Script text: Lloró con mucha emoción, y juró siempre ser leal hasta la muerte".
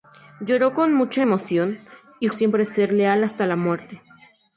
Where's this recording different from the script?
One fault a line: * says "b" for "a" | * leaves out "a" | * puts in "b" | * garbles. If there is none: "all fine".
* leaves out "juró"